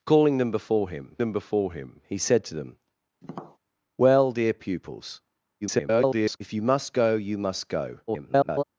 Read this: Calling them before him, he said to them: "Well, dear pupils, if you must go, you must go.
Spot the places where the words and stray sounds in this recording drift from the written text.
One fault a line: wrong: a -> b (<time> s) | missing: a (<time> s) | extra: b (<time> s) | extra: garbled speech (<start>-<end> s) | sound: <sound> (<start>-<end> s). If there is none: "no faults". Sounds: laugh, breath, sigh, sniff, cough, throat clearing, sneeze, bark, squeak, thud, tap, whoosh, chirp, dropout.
extra: them before him (1.2 s)
sound: tap (3.2-3.6 s)
extra: garbled speech (5.6-6.4 s)
extra: garbled speech (8.1-8.6 s)